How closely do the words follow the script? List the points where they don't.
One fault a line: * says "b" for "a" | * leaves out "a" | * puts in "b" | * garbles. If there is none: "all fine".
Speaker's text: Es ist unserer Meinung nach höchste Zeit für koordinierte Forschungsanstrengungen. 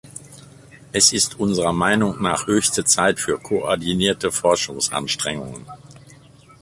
all fine